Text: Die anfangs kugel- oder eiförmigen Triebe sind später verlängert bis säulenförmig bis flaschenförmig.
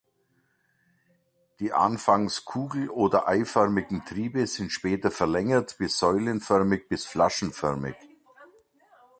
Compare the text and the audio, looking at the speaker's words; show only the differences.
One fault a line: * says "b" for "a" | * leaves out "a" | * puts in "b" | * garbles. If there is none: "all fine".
all fine